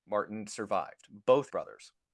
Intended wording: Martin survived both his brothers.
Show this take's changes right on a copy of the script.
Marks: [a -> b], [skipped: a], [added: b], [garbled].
Martin survived both [skipped: his] brothers.